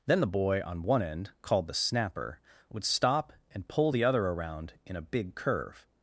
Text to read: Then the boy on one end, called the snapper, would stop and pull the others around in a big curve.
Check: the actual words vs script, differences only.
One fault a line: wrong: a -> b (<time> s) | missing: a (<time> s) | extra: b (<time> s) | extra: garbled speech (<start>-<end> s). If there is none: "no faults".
wrong: others -> other (4.0 s)